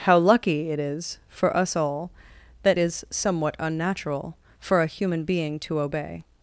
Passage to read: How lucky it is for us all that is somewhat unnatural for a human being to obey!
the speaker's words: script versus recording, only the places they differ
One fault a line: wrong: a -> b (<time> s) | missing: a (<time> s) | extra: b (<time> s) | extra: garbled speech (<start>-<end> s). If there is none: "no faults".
no faults